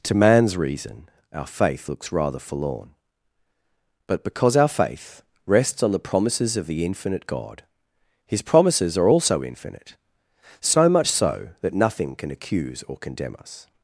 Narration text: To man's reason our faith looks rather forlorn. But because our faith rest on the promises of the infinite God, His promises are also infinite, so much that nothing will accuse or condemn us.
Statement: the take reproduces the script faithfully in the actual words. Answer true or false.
false